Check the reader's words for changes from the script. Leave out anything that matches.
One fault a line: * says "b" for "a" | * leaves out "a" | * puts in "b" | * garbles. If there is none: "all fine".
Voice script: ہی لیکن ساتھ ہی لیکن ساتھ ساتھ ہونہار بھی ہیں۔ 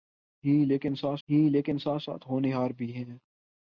all fine